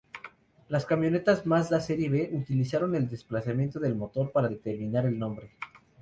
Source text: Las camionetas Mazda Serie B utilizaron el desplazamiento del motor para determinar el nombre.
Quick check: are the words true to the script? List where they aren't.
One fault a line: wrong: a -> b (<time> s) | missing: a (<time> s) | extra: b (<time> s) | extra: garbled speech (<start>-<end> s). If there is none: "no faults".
no faults